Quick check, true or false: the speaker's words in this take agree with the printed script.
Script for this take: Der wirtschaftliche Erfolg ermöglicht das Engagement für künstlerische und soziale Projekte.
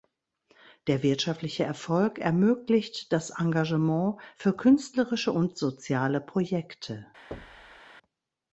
true